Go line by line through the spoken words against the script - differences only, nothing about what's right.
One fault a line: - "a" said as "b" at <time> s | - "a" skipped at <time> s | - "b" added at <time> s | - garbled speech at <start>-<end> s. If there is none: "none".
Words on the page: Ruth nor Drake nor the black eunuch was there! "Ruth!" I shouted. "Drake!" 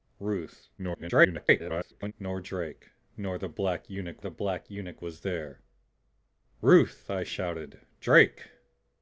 - garbled speech at 0.8-2.1 s
- "the black eunuch" added at 4.2 s